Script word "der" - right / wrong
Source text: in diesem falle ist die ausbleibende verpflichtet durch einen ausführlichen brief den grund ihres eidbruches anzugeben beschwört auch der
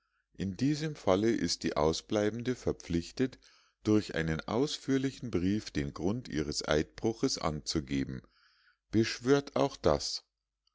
wrong